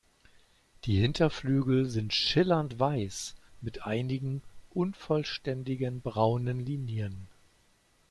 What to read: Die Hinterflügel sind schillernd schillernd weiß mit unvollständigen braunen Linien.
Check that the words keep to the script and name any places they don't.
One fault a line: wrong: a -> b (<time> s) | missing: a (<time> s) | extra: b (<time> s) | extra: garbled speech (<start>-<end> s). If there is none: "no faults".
missing: schillernd (2.8 s)
extra: einigen (3.9 s)